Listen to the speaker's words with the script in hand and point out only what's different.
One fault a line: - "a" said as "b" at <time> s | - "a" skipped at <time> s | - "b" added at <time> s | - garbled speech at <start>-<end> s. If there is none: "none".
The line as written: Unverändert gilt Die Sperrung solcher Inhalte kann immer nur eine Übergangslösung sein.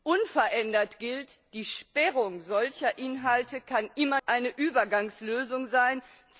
- "nur" skipped at 4.2 s